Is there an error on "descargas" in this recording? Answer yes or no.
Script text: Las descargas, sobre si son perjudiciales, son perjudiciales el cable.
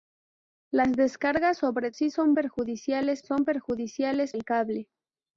no